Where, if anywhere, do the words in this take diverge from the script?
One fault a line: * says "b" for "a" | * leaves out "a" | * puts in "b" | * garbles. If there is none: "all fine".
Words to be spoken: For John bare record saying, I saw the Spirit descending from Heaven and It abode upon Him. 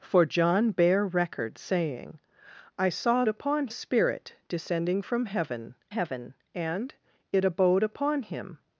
* says "upon" for "the"
* puts in "Heaven"